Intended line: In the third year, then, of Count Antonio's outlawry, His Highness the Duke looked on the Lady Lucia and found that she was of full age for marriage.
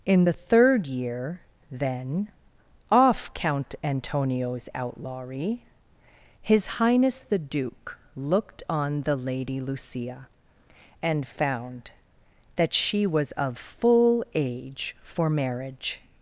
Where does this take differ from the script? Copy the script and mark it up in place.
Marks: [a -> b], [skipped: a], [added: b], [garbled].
In the third year, then, [of -> off] Count Antonio's outlawry, His Highness the Duke looked on the Lady Lucia and found that she was of full age for marriage.